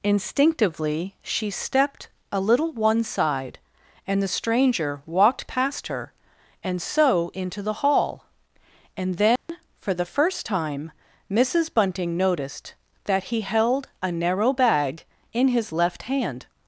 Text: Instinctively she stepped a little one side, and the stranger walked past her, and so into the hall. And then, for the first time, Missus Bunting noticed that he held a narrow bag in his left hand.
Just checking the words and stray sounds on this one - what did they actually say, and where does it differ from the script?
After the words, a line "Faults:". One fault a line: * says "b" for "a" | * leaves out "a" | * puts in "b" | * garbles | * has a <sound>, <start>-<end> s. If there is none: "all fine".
Instinctively she stepped a little one side, and the stranger walked past her, and so into the hall. And then, for the first time, Missus Bunting noticed that he held a narrow bag in his left hand.
Faults:
* has a dropout, 9.4-9.5 s